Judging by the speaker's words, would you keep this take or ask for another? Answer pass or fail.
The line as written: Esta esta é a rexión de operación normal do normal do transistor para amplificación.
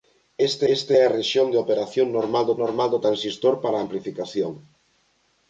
pass